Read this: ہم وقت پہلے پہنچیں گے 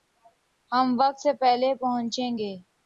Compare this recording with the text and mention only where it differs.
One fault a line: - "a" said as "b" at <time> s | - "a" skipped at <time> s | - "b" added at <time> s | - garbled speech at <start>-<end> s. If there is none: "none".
- "سے" added at 1.2 s